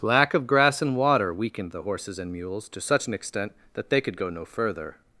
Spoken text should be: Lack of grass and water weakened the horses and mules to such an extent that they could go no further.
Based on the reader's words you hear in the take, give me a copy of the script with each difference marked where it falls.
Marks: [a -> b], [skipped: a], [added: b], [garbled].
Lack of grass and water weakened the horses and mules to such an extent that they could go no further.